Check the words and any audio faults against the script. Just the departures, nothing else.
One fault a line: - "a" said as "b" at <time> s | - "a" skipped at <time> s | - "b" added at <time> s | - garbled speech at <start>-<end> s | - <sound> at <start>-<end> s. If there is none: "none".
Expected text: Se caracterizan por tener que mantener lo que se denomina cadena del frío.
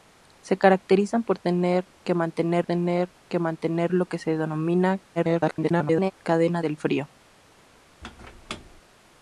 - "tener que mantener" added at 2.6 s
- garbled speech at 5.2-6.1 s
- squeak at 8.0-8.8 s